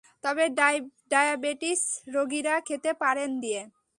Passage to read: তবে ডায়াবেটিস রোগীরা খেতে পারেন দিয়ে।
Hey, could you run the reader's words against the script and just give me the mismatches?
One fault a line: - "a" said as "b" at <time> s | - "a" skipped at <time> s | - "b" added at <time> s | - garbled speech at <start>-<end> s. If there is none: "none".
none